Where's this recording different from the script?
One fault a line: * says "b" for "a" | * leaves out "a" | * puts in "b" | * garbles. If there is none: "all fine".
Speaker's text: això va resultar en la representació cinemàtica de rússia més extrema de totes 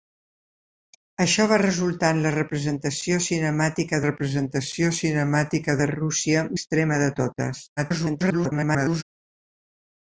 * puts in "representació cinemàtica"
* leaves out "més"
* garbles